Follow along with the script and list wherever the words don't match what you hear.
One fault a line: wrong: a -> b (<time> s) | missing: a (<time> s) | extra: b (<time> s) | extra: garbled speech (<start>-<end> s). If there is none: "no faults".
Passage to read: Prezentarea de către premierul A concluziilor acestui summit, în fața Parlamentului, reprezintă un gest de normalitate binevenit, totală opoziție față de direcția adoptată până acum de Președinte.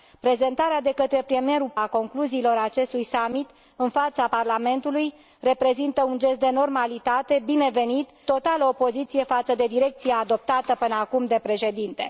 no faults